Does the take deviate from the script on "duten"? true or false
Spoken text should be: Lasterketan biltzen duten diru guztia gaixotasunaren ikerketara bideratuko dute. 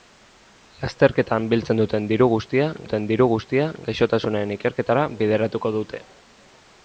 false